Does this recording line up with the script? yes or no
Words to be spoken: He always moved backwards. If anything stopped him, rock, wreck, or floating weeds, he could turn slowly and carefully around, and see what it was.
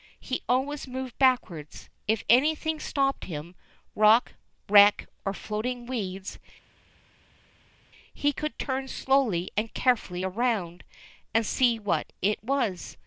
yes